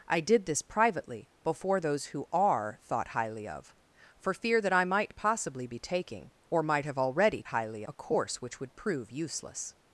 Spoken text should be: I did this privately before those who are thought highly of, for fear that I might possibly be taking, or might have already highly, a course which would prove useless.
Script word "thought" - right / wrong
right